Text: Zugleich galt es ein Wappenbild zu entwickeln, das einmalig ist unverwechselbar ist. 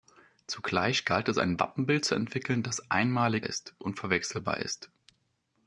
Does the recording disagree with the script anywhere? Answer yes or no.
no